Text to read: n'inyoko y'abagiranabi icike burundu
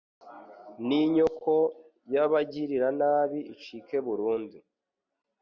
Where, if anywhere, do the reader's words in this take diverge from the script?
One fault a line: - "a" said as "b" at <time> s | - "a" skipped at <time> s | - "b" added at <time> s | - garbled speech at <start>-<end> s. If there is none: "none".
none